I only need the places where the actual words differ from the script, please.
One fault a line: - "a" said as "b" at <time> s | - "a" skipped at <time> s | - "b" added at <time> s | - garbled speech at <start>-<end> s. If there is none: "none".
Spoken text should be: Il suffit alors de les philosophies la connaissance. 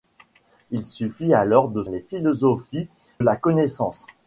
none